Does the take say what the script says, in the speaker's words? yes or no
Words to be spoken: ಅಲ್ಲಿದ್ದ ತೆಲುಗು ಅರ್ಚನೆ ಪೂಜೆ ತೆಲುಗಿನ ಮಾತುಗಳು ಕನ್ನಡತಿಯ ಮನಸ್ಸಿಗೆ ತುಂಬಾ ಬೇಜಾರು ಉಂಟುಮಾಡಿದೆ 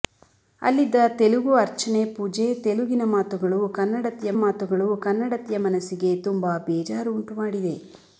no